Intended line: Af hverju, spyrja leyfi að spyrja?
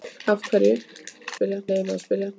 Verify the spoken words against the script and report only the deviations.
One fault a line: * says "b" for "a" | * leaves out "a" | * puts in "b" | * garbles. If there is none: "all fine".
all fine